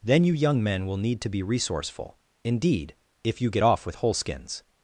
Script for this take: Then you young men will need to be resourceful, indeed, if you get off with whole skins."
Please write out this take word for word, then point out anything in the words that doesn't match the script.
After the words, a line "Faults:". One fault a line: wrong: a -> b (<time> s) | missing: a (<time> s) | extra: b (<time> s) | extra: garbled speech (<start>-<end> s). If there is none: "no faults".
Then you young men will need to be resourceful, indeed, if you get off with whole skins."
Faults:
no faults